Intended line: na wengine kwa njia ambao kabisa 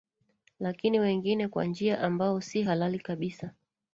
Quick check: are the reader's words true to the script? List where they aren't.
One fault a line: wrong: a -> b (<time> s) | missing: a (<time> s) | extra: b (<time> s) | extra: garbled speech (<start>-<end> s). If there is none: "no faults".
wrong: na -> lakini (0.6 s)
extra: si halali (2.4 s)